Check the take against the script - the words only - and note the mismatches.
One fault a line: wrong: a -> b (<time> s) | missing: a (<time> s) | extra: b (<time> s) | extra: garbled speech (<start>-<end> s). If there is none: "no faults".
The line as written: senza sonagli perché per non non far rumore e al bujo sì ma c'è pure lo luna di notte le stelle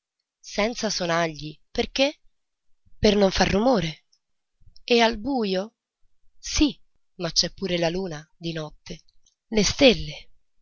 missing: non (3.3 s)
wrong: lo -> la (7.8 s)